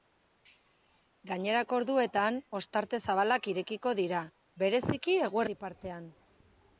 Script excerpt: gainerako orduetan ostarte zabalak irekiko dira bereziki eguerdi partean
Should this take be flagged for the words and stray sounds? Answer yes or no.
no